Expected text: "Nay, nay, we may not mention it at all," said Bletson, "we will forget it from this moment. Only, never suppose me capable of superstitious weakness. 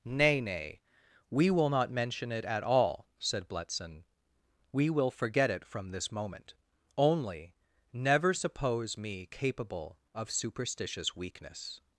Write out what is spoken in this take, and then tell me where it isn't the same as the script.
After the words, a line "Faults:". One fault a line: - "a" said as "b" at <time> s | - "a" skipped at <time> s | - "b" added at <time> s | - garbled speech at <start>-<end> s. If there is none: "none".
"Nay, nay, we will not mention it at all," said Bletson, "we will forget it from this moment. Only, never suppose me capable of superstitious weakness.
Faults:
- "may" said as "will" at 1.5 s